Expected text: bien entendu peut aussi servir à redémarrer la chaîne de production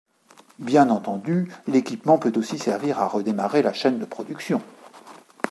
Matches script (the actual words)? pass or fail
fail